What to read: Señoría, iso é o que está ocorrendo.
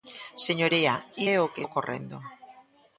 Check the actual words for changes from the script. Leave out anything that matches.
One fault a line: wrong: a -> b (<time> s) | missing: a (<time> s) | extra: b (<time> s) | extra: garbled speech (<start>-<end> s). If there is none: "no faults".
missing: iso (0.9 s)
missing: está (1.6 s)